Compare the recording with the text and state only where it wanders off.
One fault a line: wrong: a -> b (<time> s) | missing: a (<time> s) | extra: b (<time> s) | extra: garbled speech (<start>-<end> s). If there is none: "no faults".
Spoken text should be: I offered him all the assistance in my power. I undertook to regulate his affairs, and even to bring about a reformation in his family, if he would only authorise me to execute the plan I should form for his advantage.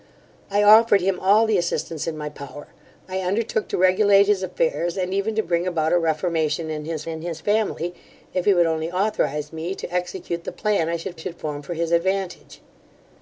extra: in his (7.1 s)
extra: should (11.2 s)